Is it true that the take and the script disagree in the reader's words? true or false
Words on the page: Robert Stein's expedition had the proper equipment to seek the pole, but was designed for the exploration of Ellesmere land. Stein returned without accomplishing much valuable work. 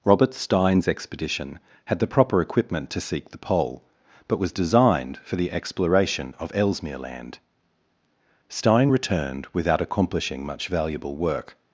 false